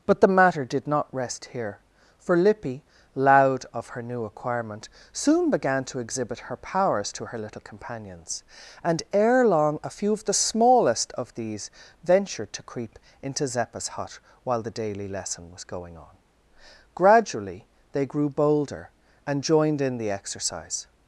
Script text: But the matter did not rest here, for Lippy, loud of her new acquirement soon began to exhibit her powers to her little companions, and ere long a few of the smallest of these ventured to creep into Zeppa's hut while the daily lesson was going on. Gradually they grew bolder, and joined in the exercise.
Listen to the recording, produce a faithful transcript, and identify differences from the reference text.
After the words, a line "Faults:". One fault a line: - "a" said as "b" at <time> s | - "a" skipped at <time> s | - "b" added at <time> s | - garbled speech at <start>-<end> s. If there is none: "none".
But the matter did not rest here, for Lippy, loud of her new acquirement soon began to exhibit her powers to her little companions, and ere long a few of the smallest of these ventured to creep into Zeppa's hut while the daily lesson was going on. Gradually they grew bolder, and joined in the exercise.
Faults:
none